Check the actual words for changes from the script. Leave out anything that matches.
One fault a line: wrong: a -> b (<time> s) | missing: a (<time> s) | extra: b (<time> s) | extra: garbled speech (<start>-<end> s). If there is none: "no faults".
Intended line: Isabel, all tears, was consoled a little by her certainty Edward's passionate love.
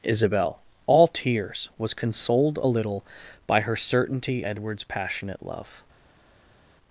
no faults